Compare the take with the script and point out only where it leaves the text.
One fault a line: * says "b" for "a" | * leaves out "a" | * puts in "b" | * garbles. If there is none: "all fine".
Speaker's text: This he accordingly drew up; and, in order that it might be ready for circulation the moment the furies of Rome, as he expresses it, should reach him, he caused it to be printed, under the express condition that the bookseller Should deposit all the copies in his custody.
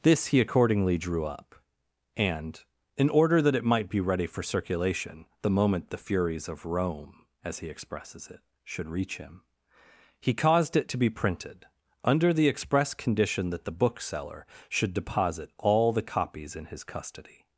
all fine